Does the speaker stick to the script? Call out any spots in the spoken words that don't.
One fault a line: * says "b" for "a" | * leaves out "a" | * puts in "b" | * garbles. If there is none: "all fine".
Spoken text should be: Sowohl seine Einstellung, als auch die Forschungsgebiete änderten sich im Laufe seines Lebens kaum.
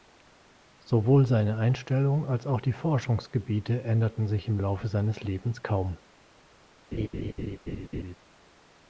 all fine